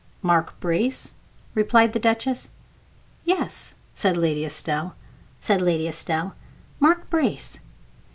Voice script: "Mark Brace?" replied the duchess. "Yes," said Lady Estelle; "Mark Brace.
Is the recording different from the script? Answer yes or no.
yes